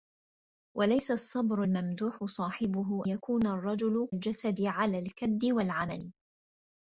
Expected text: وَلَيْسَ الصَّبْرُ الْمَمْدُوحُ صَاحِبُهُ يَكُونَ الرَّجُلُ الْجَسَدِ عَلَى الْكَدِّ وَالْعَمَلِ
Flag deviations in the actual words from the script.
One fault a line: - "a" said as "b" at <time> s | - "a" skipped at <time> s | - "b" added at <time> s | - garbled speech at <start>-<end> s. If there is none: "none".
none